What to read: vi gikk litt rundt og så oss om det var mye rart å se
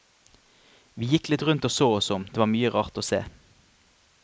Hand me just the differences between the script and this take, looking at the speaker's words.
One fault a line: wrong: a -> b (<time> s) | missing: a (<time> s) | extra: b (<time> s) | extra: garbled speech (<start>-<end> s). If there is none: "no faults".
no faults